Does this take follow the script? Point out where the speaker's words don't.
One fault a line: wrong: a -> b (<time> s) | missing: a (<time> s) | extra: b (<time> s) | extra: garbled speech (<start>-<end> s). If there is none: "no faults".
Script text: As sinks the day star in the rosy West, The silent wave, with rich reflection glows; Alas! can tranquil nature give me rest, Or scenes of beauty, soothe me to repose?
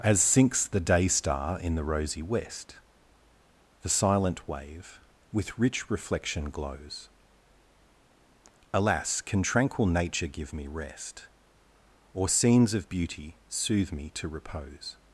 no faults